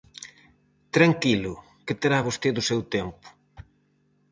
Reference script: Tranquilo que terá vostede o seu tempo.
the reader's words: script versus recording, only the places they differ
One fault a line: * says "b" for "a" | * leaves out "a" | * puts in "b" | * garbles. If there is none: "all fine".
all fine